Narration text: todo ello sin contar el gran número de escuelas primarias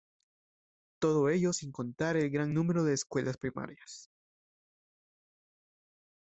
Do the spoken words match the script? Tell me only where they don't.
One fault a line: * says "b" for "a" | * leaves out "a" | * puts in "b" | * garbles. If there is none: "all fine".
all fine